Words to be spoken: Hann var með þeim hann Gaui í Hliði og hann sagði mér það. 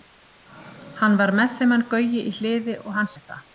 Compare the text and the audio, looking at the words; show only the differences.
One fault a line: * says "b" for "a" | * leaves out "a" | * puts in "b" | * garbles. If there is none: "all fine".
* leaves out "sagði"